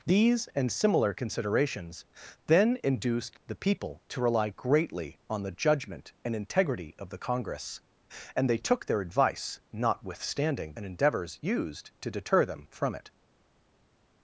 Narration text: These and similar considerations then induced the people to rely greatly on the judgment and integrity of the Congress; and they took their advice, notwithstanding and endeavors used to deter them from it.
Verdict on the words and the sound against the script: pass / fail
pass